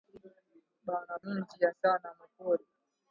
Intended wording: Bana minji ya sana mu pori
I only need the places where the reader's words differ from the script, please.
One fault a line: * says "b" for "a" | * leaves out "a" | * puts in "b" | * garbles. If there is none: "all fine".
all fine